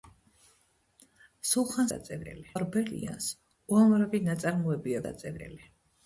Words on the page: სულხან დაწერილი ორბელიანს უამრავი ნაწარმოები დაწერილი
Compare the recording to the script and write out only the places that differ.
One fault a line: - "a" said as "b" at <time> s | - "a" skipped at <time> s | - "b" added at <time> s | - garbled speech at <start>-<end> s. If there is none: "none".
none